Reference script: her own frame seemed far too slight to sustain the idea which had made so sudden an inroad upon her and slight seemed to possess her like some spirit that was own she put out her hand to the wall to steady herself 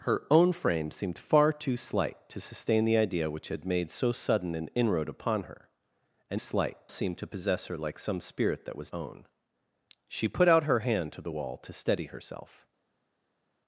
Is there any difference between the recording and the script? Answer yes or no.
no